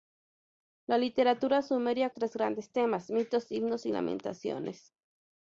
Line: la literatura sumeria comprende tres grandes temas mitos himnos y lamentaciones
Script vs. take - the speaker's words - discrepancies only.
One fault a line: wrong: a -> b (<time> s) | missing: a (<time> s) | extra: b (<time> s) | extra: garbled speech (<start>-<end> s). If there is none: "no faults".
missing: comprende (2.1 s)